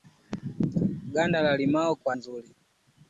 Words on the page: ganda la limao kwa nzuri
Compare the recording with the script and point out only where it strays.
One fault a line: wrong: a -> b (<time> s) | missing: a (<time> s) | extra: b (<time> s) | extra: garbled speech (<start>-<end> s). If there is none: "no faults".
no faults